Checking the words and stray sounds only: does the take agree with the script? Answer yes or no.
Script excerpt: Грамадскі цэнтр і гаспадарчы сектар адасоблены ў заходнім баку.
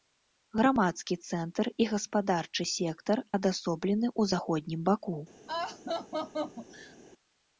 no